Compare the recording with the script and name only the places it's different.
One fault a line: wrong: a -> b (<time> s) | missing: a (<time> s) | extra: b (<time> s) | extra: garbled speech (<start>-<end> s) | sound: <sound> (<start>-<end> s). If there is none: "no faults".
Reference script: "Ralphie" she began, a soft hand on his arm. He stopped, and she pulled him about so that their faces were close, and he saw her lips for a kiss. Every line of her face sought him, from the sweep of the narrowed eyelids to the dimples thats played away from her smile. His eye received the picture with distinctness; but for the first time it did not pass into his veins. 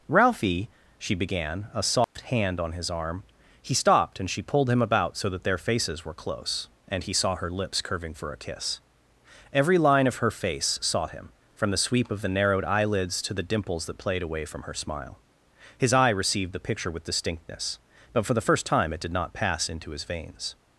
sound: dropout (2.0-2.2 s)
extra: curving (7.8 s)
wrong: thats -> that (13.9 s)